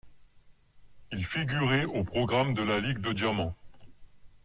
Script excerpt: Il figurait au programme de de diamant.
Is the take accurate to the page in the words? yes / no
no